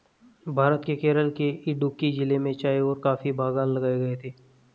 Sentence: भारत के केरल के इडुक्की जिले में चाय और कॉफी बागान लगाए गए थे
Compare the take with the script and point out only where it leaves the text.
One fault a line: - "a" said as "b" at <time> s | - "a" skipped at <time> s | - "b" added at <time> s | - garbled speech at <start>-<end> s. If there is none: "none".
none